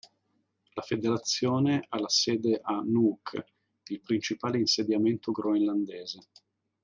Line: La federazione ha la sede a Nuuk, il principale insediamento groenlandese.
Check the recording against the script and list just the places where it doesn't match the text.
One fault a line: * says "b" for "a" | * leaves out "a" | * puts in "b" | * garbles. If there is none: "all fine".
all fine